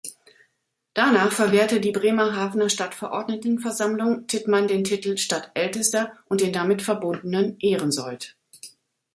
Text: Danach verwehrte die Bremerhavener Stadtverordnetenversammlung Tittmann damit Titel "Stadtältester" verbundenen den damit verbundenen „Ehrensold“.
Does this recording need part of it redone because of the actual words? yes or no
yes